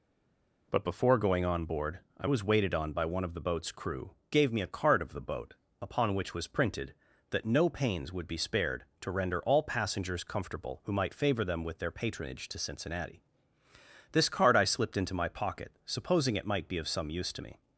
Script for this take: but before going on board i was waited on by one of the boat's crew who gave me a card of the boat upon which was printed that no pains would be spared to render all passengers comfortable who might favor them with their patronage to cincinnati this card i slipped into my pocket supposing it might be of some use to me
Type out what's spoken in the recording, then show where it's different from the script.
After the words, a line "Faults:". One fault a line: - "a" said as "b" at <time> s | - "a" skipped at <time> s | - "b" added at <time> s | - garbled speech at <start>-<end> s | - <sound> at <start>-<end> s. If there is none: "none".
but before going on board i was waited on by one of the boat's crew gave me a card of the boat upon which was printed that no pains would be spared to render all passengers comfortable who might favor them with their patronage to cincinnati this card i slipped into my pocket supposing it might be of some use to me
Faults:
- "who" skipped at 4.1 s